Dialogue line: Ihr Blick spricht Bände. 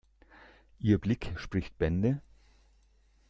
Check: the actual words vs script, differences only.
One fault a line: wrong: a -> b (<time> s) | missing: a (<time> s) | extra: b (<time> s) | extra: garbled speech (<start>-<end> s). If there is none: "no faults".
no faults